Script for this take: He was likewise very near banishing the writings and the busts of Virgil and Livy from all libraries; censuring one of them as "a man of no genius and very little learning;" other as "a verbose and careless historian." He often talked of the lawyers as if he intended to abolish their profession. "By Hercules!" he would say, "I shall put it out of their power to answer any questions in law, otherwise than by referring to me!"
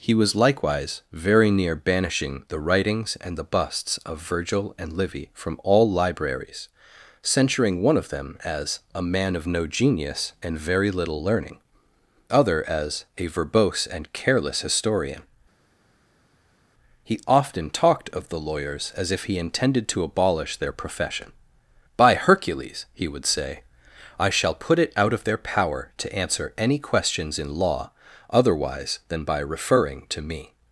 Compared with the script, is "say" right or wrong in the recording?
right